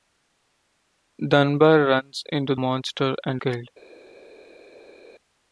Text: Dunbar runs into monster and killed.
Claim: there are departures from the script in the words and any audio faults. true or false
false